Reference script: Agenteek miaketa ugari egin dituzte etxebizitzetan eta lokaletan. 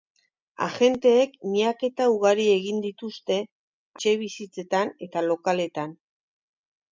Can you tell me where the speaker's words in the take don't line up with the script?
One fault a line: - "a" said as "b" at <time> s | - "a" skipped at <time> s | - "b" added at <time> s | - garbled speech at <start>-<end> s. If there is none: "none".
none